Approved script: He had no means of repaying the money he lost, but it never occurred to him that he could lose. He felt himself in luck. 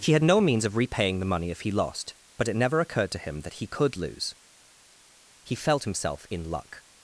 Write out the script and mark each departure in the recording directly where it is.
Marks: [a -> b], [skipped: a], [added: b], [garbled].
He had no means of repaying the money [added: if] he lost, but it never occurred to him that he could lose. He felt himself in luck.